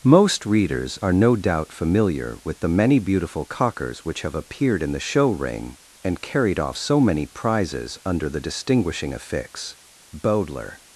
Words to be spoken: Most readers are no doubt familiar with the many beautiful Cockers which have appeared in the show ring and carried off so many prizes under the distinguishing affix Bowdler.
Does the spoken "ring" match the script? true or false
true